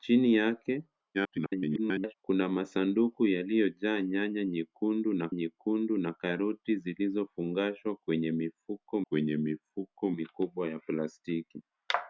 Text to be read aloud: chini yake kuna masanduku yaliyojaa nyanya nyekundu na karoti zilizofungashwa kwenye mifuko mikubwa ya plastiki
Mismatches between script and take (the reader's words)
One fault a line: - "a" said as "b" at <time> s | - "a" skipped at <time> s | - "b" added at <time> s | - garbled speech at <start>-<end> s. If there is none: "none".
- garbled speech at 1.1-2.1 s
- "nyekundu na" added at 5.3 s
- "kwenye mifuko" added at 9.0 s